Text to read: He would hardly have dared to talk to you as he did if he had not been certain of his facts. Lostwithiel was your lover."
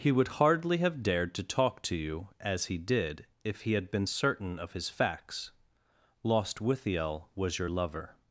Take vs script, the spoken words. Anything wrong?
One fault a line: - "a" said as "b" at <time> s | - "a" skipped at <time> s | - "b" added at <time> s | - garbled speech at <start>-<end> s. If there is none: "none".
- "not" skipped at 3.9 s